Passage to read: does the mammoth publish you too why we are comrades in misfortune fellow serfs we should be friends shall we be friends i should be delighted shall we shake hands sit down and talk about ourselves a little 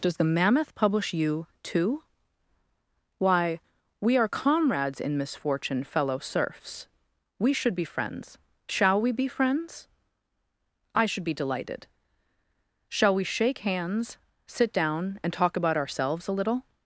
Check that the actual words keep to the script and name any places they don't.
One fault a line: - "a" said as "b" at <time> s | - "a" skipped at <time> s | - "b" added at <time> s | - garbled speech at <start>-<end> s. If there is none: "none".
none